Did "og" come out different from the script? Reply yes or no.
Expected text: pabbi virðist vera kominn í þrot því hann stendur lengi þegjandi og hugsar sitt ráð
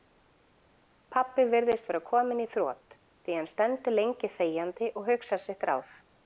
no